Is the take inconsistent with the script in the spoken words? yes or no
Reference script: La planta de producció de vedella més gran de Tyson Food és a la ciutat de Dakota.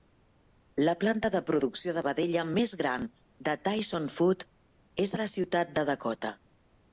no